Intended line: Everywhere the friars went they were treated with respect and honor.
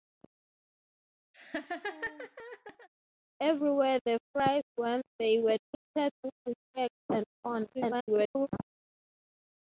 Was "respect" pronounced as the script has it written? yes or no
yes